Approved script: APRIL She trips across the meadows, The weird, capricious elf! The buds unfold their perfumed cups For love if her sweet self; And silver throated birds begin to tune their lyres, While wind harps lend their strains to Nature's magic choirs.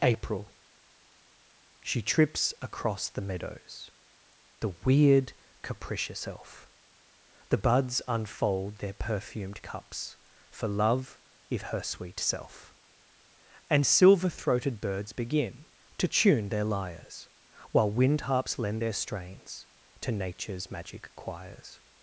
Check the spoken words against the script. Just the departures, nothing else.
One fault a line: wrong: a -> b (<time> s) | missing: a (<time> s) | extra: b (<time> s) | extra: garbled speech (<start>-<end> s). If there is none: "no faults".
no faults